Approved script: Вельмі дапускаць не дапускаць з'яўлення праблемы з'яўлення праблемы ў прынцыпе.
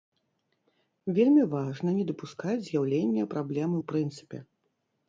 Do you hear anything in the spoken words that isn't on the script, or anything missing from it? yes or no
yes